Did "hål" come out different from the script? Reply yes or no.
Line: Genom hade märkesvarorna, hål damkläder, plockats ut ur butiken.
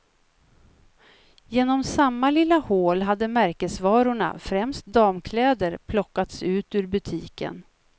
yes